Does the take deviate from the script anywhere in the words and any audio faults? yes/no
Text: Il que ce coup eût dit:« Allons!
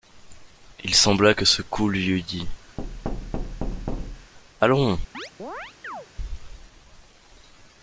yes